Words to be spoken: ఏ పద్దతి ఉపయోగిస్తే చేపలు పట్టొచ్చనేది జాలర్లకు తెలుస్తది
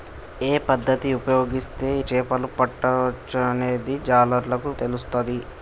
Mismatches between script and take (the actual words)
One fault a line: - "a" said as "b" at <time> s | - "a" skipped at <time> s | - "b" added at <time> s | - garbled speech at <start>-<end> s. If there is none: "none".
none